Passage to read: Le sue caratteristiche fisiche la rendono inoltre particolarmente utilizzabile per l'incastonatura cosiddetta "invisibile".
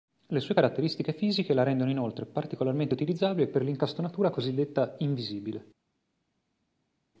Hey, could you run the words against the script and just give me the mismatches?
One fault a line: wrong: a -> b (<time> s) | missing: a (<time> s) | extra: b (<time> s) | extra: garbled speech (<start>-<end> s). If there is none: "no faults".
no faults